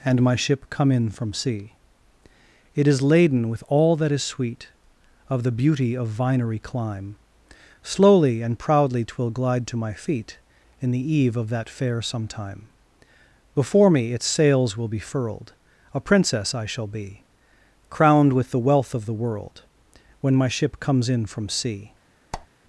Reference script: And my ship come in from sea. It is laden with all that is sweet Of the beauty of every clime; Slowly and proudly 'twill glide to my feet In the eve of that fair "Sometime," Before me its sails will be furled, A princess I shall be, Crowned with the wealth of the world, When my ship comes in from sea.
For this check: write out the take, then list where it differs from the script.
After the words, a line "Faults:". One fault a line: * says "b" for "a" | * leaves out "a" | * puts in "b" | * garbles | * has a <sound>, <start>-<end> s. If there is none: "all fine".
And my ship come in from sea. It is laden with all that is sweet Of the beauty of vinery clime; Slowly and proudly 'twill glide to my feet In the eve of that fair "Sometime," Before me its sails will be furled, A princess I shall be, Crowned with the wealth of the world, When my ship comes in from sea.
Faults:
* says "vinery" for "every"
* has a squeak, 22.3-22.5 s